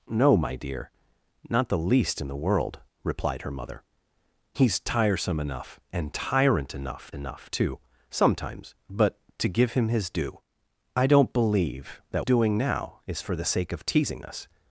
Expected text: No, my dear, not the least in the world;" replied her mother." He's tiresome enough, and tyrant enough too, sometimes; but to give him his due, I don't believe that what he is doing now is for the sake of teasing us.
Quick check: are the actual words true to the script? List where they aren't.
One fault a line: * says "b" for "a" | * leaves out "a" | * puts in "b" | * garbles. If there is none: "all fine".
* puts in "enough"
* leaves out "what he is"